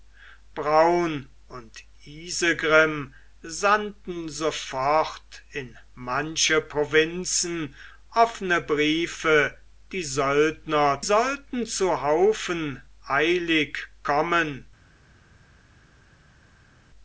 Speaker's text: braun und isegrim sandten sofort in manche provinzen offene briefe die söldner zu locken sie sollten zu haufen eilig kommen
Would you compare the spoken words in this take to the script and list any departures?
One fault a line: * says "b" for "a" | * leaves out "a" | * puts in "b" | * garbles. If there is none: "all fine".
* leaves out "zu locken sie"